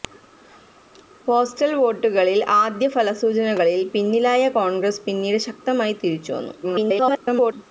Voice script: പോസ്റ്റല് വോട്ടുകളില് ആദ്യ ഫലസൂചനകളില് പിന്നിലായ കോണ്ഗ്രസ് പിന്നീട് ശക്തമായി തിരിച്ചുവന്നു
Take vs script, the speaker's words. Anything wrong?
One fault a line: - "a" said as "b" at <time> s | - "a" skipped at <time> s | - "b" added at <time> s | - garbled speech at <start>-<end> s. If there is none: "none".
- garbled speech at 6.6-7.5 s